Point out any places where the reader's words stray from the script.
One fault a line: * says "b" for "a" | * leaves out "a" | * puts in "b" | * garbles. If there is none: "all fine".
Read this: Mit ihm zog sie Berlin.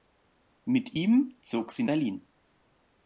all fine